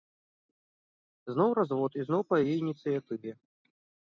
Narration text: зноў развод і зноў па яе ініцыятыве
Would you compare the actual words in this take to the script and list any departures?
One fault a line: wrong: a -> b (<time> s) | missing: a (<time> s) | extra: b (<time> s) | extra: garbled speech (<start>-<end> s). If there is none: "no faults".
no faults